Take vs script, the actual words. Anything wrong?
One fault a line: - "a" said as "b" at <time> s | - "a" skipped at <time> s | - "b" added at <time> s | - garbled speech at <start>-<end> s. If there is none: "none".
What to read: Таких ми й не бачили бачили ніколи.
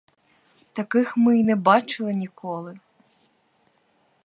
- "бачили" skipped at 2.1 s